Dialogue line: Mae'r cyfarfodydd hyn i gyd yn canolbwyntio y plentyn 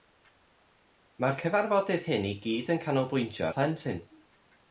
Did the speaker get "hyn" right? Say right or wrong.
right